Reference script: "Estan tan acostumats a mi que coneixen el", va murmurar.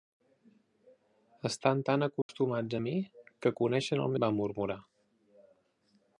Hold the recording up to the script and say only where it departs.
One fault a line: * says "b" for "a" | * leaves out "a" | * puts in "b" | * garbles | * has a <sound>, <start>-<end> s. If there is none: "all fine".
* has a dropout, 2.2-2.3 s